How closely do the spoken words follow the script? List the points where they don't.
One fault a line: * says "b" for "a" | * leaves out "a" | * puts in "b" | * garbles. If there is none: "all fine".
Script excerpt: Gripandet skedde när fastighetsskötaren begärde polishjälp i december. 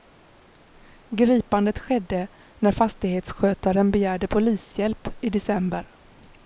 all fine